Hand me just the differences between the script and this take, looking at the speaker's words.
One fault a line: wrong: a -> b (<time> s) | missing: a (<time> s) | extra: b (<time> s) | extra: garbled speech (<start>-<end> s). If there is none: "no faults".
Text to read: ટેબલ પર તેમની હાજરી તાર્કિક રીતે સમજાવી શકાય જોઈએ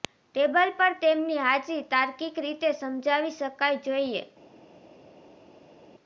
no faults